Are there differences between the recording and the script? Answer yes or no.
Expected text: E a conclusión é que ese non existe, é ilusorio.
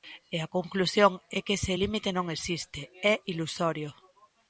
yes